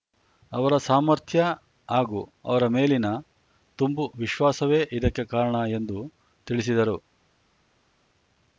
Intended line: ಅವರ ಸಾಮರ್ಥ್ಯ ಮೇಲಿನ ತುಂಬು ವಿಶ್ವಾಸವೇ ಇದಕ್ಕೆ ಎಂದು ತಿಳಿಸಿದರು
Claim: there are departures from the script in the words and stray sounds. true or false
true